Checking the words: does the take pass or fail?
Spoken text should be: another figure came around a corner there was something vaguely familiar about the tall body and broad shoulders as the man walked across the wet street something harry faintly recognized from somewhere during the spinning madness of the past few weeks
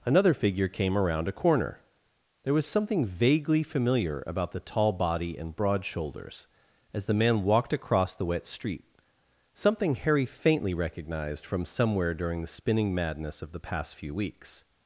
pass